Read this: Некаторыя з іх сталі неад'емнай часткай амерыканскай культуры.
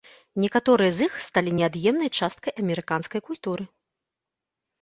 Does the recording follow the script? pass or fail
pass